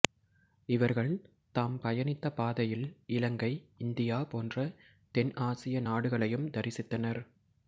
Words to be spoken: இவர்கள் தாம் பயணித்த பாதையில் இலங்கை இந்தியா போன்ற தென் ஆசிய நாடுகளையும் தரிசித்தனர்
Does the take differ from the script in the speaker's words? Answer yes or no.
no